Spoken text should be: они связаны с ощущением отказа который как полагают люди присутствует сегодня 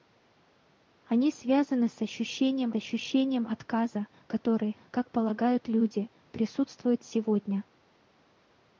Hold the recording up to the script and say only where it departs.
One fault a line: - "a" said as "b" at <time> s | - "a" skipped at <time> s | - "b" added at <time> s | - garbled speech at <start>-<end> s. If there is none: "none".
- "ощущением" added at 2.7 s